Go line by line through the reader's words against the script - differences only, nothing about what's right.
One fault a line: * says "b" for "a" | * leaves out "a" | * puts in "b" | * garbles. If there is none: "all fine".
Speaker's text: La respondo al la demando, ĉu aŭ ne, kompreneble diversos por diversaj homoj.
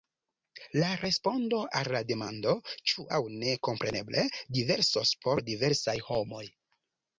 all fine